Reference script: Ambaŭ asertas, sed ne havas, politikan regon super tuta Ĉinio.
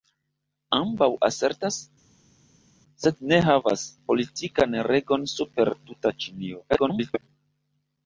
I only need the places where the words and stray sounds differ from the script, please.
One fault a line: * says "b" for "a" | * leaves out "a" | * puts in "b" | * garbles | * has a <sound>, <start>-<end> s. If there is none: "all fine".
* garbles